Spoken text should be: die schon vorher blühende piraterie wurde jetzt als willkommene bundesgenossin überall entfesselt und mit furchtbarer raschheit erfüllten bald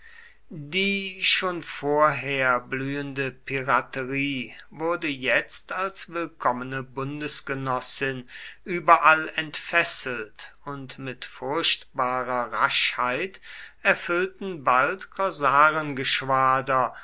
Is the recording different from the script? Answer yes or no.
no